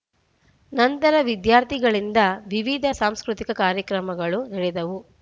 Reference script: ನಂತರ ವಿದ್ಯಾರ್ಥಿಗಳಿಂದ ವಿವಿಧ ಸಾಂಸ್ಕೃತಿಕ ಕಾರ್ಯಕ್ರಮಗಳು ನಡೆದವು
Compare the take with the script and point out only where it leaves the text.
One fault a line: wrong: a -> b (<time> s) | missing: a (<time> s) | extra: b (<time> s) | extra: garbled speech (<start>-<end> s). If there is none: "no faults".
no faults